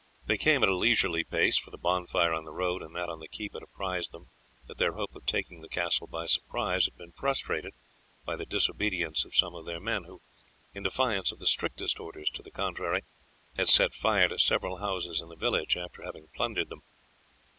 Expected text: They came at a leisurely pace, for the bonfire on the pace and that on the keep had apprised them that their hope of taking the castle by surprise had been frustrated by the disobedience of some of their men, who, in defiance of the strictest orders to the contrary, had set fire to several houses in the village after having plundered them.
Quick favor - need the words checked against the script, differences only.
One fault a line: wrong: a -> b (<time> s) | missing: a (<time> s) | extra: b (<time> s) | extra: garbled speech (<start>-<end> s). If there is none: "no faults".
wrong: pace -> road (2.5 s)